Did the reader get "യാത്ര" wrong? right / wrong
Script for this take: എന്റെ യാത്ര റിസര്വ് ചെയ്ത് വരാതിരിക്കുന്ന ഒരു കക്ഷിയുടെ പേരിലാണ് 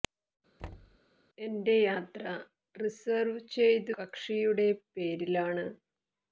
right